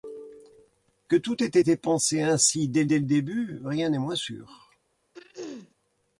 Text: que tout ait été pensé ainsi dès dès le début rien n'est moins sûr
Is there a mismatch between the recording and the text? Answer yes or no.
no